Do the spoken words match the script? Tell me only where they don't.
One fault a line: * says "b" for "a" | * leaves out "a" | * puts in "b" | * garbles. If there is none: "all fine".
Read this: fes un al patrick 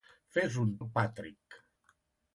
all fine